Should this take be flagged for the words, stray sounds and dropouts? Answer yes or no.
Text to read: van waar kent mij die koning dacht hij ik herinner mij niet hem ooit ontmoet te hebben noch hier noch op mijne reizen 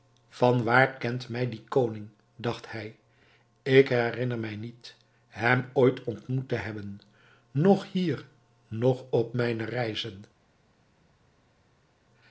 no